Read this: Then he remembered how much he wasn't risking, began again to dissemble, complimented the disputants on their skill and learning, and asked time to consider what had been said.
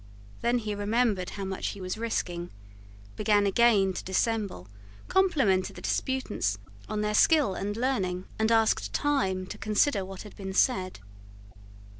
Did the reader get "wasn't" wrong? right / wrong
wrong